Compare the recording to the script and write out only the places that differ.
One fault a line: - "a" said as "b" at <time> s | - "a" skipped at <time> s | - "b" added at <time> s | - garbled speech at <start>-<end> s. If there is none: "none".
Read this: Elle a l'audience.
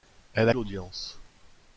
none